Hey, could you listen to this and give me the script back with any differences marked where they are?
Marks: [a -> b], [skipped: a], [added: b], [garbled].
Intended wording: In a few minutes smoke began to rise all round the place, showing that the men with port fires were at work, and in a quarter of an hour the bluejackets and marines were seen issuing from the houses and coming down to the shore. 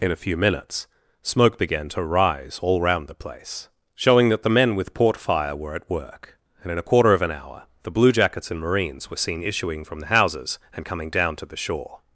In a few minutes smoke began to rise all round the place, showing that the men with port [fires -> fire] were at work, and in a quarter of an hour the bluejackets and marines were seen issuing from the houses and coming down to the shore.